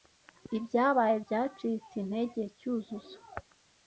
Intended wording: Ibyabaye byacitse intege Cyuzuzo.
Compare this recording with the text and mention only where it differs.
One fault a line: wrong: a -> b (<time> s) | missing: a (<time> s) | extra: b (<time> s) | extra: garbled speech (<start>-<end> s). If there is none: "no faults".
no faults